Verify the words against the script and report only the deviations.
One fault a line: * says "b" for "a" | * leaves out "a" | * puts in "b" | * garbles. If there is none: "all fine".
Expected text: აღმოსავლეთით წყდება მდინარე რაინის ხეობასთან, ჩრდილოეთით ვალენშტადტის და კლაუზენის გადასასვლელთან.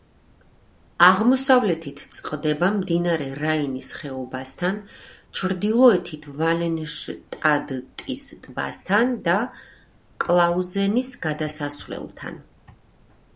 * puts in "ტბასთან"